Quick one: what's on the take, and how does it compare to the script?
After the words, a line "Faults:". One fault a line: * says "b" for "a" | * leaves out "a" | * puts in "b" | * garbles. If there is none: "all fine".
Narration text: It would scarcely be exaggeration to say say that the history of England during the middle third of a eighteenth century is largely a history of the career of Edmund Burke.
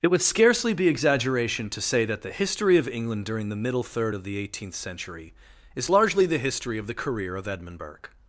It would scarcely be exaggeration to say that the history of England during the middle third of the eighteenth century is largely the history of the career of Edmund Burke.
Faults:
* leaves out "say"
* says "the" for "a"
* says "the" for "a"